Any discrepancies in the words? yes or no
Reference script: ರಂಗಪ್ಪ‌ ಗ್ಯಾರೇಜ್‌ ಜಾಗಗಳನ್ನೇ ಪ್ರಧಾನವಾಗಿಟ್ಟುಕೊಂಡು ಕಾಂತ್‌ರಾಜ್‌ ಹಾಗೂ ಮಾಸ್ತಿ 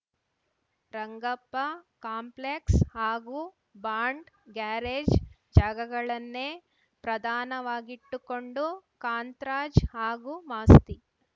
yes